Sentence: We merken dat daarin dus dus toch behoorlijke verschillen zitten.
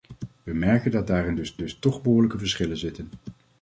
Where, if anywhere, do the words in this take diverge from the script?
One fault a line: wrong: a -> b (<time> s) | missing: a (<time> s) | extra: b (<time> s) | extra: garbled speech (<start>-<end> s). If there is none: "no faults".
no faults